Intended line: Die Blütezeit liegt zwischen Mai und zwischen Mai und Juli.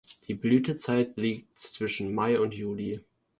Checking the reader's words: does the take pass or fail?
fail